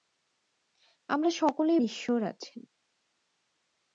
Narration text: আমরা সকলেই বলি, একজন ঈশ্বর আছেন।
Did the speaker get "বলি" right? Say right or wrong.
wrong